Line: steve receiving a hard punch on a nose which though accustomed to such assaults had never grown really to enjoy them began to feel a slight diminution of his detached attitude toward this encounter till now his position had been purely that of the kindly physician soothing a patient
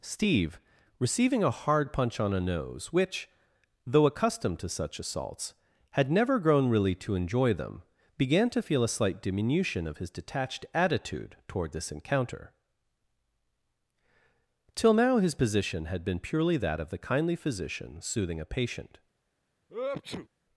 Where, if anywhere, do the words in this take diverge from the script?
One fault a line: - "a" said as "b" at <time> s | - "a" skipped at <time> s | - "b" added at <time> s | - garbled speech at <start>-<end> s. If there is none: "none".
none